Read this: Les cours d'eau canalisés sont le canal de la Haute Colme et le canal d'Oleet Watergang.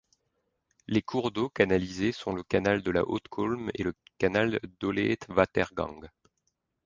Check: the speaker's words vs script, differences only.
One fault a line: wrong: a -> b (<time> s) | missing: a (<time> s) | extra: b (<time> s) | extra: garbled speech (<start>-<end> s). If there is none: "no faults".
no faults